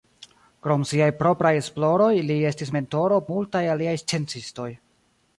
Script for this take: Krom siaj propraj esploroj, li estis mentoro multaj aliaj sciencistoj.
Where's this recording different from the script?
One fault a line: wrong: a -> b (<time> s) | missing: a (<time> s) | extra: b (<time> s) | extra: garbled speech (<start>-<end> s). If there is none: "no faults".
no faults